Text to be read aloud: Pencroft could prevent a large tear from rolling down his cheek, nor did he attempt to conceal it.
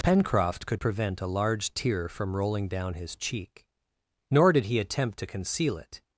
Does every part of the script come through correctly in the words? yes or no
yes